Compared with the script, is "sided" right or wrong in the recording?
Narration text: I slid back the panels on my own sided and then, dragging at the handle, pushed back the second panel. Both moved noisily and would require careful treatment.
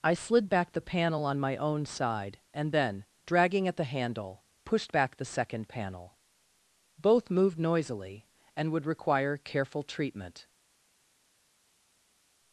wrong